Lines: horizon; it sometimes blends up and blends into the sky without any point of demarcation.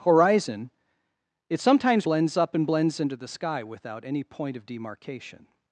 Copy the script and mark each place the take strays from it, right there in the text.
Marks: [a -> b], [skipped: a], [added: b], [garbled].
horizon; it sometimes blends up and blends into the sky without any point of demarcation.